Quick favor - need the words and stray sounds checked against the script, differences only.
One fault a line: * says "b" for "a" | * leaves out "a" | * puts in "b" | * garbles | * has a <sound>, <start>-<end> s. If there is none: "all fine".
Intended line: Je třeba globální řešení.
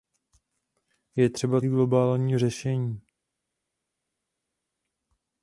all fine